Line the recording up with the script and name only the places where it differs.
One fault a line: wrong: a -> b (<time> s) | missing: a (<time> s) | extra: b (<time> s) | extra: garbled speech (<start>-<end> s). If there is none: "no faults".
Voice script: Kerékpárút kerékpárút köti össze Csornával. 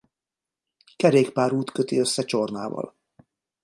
missing: kerékpárút (1.7 s)